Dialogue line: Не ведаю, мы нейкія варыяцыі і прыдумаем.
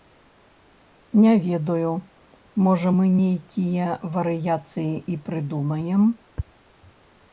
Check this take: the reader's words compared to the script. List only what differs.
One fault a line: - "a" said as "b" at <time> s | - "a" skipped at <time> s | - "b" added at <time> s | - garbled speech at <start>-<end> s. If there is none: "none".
- "можа" added at 2.7 s